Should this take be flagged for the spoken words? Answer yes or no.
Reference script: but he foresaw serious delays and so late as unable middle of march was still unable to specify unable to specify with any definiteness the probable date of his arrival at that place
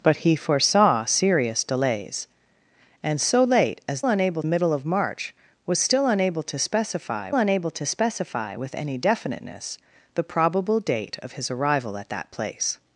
no